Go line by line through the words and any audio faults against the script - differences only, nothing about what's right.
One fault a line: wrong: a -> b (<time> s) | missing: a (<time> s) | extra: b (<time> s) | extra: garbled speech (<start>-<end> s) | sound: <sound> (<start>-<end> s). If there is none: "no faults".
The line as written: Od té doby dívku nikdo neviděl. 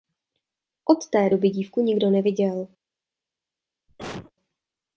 sound: cough (3.9-4.3 s)